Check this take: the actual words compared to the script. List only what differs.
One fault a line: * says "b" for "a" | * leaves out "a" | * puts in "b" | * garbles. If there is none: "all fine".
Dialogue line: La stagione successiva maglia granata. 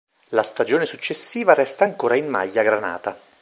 * puts in "resta ancora in"